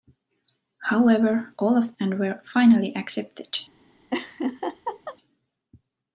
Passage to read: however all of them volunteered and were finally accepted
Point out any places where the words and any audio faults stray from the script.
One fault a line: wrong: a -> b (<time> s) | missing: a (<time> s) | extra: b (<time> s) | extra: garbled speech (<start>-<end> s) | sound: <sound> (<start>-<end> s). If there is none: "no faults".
missing: them volunteered (1.9 s)
sound: laugh (4.1-5.2 s)